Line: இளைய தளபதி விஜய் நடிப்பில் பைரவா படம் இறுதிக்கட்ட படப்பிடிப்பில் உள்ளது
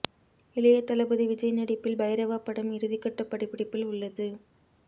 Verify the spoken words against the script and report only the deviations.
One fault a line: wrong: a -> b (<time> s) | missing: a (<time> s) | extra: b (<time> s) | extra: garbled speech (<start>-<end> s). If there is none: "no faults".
no faults